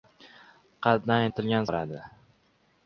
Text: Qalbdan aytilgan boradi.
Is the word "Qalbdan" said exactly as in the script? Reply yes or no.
yes